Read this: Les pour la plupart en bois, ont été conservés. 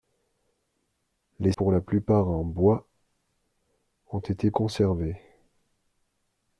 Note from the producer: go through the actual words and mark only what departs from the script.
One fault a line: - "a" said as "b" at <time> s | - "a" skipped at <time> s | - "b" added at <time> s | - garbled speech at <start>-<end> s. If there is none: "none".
none